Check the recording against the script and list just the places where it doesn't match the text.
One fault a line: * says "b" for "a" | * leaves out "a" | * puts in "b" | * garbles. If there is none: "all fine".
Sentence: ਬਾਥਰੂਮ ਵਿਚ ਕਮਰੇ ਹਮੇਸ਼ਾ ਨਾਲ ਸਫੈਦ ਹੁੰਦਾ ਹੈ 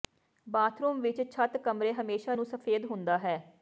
* puts in "ਛੱਤ"
* says "ਨੂੰ" for "ਨਾਲ"